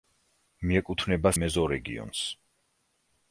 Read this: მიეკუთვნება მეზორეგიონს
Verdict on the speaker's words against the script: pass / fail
pass